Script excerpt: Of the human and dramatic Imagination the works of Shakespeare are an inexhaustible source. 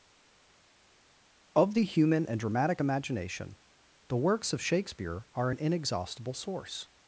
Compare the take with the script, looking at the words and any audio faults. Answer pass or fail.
pass